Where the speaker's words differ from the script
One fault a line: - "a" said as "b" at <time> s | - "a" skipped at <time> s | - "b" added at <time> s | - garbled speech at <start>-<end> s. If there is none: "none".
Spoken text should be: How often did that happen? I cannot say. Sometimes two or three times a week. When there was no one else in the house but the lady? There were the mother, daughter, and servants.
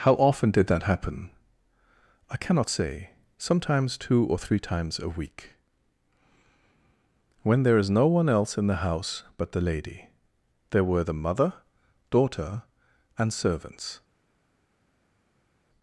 - "was" said as "is" at 7.8 s